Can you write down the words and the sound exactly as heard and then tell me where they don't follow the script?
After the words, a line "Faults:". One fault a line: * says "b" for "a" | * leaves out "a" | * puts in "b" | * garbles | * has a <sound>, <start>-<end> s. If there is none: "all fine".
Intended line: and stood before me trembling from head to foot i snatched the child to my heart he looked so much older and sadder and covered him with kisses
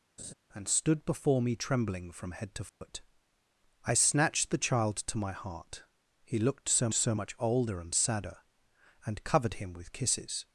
and stood before me trembling from head to foot i snatched the child to my heart he looked so so much older and sadder and covered him with kisses
Faults:
* has a laugh, 0.2-0.3 s
* has a dropout, 2.7-2.8 s
* puts in "so"